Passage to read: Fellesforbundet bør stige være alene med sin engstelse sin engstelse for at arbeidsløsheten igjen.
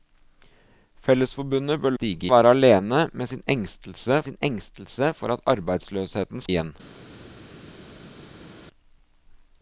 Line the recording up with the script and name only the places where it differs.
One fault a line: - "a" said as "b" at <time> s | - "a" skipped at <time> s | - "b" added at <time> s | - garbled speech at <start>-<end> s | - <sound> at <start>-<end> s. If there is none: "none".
none